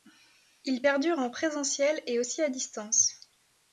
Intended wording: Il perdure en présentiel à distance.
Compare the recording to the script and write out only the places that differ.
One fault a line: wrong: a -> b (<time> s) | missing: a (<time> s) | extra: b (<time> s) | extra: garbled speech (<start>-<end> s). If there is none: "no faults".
extra: et aussi (2.1 s)